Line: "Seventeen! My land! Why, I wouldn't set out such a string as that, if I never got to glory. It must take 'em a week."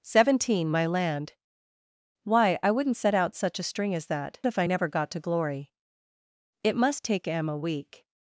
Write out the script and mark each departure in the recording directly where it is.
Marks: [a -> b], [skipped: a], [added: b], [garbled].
"Seventeen! My land! Why, I wouldn't set out such a string as that, if I never got to glory. It must take 'em a week."